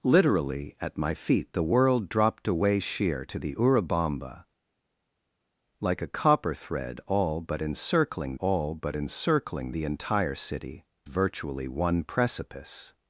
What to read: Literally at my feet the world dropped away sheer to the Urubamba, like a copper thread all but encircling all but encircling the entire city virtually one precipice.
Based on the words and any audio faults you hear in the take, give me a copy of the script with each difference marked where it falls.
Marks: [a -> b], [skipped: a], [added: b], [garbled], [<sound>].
Literally at my feet the world dropped away sheer to the Urubamba, like a copper thread all but encircling all but encircling the entire city virtually one precipice.